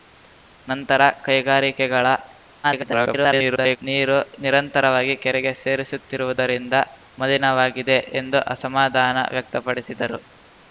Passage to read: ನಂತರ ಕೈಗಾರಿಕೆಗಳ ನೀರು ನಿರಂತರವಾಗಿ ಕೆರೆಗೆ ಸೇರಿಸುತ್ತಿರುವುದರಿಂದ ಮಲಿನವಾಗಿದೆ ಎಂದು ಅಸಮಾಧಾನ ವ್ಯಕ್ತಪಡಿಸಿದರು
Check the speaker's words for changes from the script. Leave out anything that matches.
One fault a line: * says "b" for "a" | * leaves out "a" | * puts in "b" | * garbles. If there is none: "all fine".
* garbles